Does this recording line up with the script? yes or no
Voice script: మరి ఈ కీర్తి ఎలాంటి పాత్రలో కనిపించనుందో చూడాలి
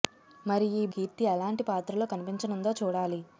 yes